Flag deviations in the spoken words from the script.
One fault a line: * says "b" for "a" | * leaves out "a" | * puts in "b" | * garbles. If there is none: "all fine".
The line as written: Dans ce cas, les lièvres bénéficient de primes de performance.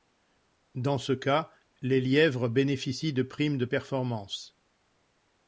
all fine